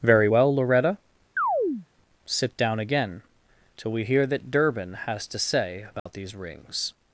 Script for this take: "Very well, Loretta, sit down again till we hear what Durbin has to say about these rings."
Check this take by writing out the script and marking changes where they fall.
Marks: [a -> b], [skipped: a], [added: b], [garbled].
"Very well, Loretta, sit down again till we hear [what -> that] Durbin has to say about these rings."